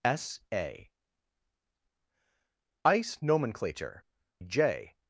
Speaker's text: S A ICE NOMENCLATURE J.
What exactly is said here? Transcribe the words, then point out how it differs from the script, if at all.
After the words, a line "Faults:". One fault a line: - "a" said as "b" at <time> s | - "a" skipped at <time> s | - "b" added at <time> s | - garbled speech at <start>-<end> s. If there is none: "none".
S A ICE NOMENCLATURE J.
Faults:
none